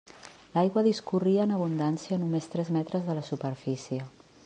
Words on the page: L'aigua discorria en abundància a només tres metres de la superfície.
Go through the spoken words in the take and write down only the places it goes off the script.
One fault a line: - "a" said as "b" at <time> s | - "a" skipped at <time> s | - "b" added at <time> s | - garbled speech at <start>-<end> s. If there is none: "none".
none